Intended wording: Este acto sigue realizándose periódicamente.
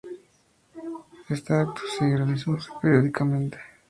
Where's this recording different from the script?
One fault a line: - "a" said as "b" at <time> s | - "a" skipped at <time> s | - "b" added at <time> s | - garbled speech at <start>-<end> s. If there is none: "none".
none